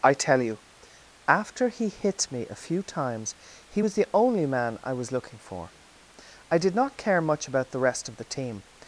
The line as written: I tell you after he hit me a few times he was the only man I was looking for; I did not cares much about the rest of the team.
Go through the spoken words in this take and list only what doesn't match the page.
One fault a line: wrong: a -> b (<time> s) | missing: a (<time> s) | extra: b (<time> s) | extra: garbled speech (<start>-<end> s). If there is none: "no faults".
wrong: cares -> care (7.0 s)